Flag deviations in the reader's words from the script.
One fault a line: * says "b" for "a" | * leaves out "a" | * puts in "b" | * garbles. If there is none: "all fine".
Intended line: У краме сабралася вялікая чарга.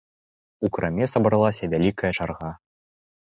all fine